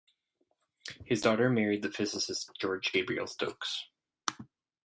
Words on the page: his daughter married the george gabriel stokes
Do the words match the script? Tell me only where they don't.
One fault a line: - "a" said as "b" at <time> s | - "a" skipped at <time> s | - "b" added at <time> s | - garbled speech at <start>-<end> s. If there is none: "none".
- "physicist" added at 1.9 s